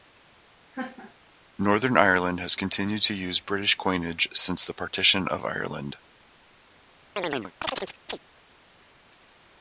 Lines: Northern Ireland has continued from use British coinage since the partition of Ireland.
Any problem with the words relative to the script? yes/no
yes